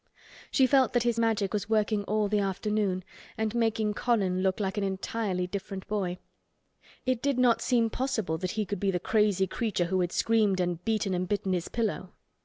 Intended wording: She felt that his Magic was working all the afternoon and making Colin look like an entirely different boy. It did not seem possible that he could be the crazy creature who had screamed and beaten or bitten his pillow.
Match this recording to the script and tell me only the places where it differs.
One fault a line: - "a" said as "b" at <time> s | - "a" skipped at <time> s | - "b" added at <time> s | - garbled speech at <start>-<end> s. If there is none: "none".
- "or" said as "and" at 11.1 s